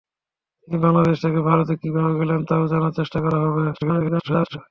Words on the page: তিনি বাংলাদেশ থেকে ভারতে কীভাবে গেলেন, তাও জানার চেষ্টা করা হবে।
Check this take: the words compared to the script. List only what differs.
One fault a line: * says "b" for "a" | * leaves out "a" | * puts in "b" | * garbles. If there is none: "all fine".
* garbles